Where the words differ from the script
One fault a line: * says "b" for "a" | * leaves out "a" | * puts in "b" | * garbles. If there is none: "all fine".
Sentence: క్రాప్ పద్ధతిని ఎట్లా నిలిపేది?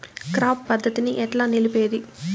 all fine